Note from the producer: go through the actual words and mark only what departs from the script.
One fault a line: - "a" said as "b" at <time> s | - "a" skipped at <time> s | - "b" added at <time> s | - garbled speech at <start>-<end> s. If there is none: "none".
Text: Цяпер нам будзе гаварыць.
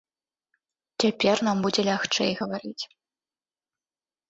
- "лягчэй" added at 1.9 s